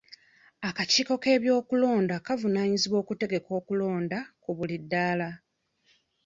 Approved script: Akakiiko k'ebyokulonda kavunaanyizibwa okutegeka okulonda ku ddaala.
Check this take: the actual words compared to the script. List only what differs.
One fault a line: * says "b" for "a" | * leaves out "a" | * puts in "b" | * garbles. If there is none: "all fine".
* puts in "buli"